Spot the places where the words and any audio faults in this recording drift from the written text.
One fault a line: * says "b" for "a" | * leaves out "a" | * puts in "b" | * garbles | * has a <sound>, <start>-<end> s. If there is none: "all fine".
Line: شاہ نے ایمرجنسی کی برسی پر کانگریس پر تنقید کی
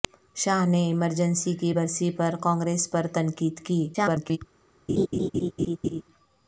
* garbles
* has a laugh, 4.9-6.0 s